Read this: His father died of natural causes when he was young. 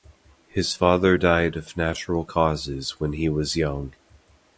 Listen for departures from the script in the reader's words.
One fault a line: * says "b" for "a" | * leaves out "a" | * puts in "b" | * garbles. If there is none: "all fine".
all fine